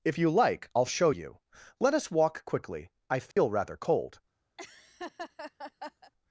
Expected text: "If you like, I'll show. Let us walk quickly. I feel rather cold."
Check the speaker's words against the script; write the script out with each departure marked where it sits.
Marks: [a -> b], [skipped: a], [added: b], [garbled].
"If you like, I'll show. [added: you] Let us walk quickly. I feel rather cold."